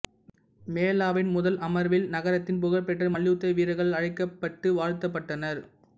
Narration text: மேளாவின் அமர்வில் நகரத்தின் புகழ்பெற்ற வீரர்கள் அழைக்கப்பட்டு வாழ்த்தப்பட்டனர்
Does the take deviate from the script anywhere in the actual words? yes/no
yes